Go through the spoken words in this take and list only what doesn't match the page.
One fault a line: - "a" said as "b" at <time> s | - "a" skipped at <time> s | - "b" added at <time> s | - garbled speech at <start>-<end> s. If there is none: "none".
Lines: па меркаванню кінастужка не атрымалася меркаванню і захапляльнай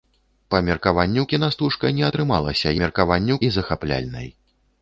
none